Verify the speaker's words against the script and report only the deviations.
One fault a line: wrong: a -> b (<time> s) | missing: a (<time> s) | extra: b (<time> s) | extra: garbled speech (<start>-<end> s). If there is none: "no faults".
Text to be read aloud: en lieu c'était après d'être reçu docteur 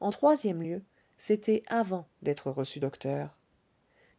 extra: troisième (0.1 s)
wrong: après -> avant (1.7 s)